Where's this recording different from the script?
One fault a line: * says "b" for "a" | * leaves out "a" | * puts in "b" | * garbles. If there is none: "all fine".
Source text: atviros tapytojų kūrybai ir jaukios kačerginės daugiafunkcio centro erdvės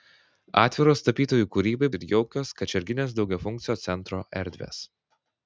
all fine